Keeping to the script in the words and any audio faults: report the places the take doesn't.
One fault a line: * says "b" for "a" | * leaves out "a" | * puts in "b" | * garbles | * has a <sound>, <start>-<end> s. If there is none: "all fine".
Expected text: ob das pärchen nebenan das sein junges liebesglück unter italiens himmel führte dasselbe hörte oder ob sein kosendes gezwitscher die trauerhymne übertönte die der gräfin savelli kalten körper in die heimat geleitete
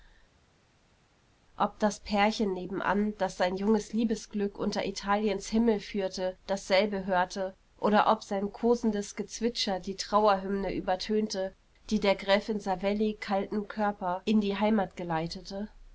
all fine